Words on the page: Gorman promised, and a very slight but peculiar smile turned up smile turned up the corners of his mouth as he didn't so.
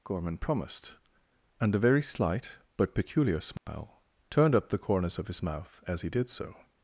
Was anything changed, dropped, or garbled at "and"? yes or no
no